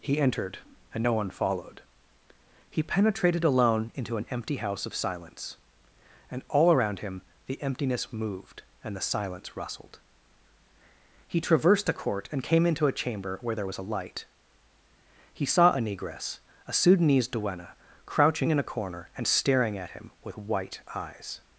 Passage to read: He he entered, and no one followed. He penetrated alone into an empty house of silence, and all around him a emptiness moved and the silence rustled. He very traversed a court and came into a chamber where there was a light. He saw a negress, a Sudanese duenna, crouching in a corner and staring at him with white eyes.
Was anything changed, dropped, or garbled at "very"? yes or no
yes